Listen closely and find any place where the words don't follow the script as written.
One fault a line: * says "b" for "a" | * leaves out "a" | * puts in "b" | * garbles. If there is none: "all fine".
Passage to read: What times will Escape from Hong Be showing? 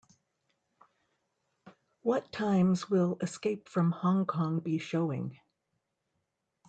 * puts in "Kong"